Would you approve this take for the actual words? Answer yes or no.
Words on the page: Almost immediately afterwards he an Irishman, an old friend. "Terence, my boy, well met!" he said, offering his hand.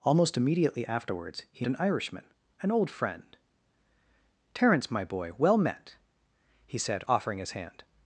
yes